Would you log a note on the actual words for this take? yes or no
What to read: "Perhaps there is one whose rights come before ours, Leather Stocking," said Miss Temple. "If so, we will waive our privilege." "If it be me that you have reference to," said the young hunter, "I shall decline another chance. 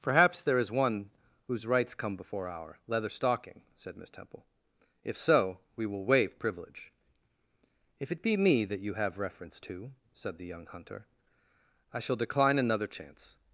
yes